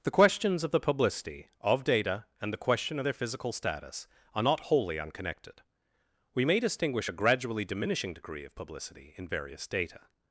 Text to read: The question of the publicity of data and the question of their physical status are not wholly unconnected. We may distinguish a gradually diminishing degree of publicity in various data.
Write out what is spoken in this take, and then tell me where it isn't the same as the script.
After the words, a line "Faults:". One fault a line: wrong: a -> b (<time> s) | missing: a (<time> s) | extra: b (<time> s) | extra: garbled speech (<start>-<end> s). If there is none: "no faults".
The questions of the publicity of data and the question of their physical status are not wholly unconnected. We may distinguish a gradually diminishing degree of publicity in various data.
Faults:
wrong: question -> questions (0.1 s)